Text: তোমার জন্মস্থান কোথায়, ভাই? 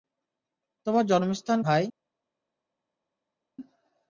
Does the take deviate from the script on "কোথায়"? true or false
true